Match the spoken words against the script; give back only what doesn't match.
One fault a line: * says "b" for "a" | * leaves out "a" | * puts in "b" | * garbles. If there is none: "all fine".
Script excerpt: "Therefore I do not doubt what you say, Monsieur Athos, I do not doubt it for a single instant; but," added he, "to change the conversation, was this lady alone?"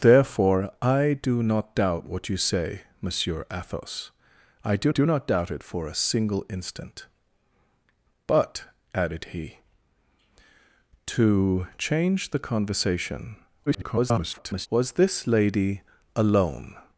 * puts in "do"
* garbles